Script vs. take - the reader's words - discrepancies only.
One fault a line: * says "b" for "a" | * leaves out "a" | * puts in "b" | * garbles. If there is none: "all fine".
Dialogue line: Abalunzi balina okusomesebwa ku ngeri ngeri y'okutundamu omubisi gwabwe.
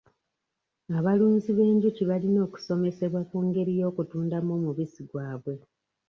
* puts in "b'enjuki"
* leaves out "ngeri"